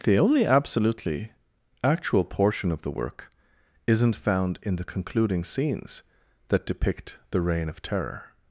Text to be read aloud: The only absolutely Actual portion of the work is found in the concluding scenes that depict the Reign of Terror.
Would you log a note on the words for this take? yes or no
yes